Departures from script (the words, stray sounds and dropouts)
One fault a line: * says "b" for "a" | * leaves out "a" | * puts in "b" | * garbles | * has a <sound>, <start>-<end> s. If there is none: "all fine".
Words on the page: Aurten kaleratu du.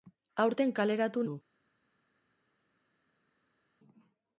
all fine